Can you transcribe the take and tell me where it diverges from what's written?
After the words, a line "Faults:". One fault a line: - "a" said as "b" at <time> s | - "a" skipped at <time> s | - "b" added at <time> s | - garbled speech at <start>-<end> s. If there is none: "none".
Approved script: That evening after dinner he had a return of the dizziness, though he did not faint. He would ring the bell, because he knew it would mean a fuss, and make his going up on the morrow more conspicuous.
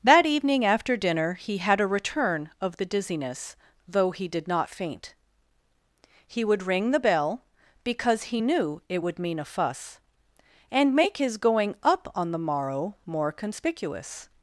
That evening after dinner he had a return of the dizziness, though he did not faint. He would ring the bell, because he knew it would mean a fuss, and make his going up on the morrow more conspicuous.
Faults:
none